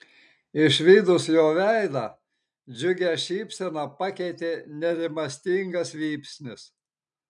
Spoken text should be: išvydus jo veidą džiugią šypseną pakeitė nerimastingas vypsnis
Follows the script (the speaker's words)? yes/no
yes